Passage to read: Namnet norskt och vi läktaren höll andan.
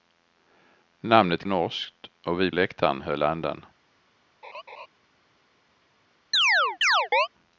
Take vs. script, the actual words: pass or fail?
pass